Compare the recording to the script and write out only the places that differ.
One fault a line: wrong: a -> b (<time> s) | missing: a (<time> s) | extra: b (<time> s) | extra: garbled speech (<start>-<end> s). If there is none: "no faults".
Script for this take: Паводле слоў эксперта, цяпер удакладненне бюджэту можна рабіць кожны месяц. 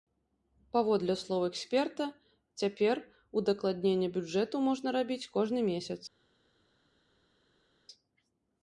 no faults